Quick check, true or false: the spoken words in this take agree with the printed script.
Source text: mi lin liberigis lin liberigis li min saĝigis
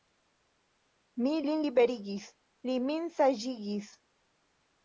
false